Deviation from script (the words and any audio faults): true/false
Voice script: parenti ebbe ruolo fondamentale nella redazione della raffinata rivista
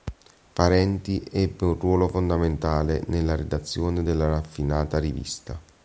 true